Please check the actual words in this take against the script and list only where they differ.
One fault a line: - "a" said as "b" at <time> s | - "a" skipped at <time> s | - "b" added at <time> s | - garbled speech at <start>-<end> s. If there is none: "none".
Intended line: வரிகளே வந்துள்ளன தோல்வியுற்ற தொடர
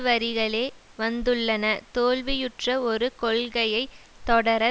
- "ஒரு கொள்கையை" added at 2.8 s